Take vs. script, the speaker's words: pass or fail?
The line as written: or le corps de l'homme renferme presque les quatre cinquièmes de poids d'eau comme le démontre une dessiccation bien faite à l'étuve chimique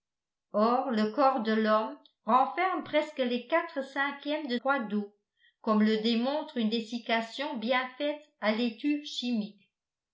pass